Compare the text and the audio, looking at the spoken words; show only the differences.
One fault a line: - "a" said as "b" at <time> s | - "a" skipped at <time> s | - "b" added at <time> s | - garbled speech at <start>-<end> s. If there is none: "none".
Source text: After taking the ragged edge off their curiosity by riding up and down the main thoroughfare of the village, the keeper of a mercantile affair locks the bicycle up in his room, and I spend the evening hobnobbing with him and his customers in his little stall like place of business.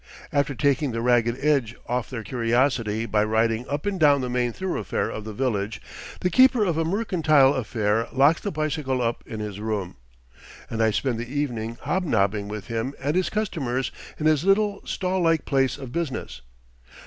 none